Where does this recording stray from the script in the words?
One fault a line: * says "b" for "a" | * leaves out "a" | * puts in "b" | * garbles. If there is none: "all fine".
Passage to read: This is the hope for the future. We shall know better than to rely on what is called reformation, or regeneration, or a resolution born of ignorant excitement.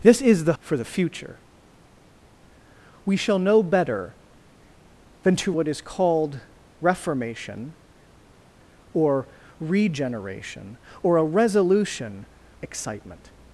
* leaves out "hope"
* leaves out "rely on"
* leaves out "born of ignorant"